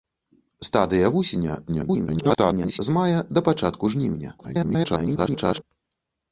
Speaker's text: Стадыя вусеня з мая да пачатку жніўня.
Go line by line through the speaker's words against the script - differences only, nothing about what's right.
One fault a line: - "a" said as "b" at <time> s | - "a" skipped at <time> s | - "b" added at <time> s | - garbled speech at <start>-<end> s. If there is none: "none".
- garbled speech at 1.7-2.8 s
- garbled speech at 4.4-5.6 s